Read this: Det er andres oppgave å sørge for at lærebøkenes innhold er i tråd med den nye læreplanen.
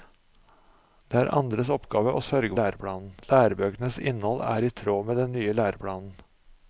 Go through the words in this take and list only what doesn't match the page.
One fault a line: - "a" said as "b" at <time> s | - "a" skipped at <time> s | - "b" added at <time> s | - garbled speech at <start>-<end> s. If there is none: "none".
- "for" said as "læreplanen" at 2.6 s